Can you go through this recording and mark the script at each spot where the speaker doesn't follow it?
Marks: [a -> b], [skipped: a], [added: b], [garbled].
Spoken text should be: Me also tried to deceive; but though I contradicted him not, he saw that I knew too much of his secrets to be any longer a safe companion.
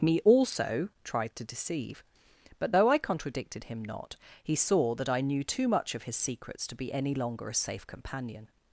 Me also tried to deceive; but though I contradicted him not, he saw that I knew too much of his secrets to be any longer a safe companion.